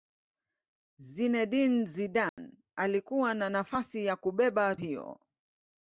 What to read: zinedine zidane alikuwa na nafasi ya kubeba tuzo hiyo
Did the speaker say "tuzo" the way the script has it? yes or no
no